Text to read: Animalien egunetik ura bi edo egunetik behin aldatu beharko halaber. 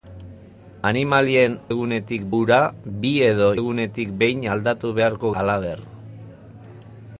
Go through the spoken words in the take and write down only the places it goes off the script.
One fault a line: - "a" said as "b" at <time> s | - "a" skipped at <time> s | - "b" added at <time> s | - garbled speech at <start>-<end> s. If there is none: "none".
none